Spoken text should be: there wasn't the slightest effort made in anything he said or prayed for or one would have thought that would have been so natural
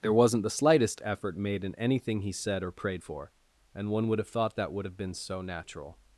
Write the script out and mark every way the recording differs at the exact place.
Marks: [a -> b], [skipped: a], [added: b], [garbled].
there wasn't the slightest effort made in anything he said or prayed for [or -> and] one would have thought that would have been so natural